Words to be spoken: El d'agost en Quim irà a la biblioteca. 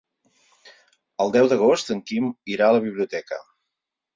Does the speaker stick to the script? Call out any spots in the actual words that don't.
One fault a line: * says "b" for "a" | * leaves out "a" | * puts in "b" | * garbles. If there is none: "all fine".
* puts in "deu"